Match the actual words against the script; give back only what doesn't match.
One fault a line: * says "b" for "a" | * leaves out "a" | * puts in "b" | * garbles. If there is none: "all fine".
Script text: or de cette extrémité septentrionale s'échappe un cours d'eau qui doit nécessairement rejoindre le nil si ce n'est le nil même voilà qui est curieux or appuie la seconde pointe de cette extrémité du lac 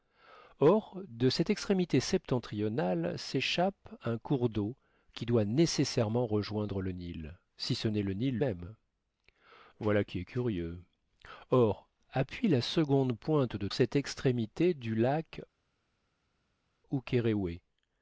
all fine